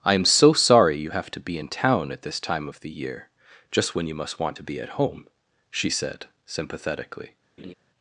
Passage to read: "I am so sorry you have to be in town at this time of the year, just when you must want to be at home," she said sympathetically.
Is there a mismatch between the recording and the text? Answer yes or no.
no